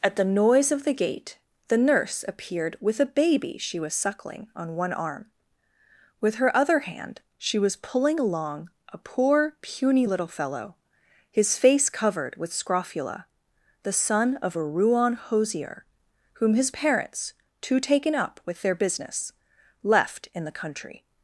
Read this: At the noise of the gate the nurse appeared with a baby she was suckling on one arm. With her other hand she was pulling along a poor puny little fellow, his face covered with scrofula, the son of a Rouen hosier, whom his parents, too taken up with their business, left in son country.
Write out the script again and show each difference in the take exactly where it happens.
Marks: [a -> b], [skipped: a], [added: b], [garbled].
At the noise of the gate the nurse appeared with a baby she was suckling on one arm. With her other hand she was pulling along a poor puny little fellow, his face covered with scrofula, the son of a Rouen hosier, whom his parents, too taken up with their business, left in [son -> the] country.